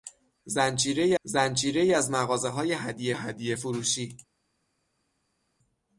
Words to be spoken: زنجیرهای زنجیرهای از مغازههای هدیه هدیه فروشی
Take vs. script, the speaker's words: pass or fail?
pass